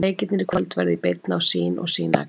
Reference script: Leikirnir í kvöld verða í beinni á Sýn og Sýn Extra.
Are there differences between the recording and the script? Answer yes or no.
no